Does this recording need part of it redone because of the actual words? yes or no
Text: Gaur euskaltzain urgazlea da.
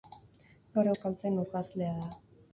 no